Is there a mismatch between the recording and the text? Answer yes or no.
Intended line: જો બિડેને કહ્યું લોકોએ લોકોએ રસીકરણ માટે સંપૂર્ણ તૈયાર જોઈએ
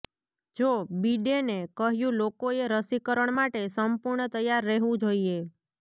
yes